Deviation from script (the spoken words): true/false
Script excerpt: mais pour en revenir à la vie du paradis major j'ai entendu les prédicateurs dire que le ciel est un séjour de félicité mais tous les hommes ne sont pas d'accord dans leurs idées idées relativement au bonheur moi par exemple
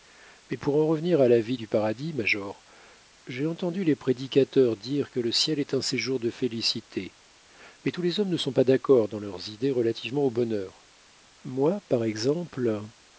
true